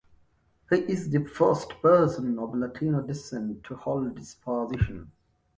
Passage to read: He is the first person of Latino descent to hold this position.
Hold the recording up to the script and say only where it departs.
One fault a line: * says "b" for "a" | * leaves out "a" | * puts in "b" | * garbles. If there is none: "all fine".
all fine